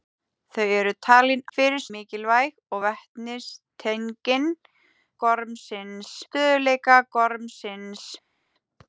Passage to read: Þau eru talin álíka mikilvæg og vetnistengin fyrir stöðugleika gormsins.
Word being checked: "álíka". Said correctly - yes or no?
no